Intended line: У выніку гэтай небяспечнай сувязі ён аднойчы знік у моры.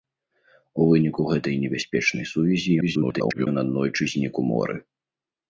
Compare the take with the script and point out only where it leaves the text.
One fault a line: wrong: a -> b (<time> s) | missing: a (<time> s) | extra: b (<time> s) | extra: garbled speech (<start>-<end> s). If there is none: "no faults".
extra: garbled speech (2.8-3.5 s)